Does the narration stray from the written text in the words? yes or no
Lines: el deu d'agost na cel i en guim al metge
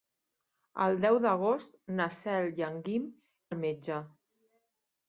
no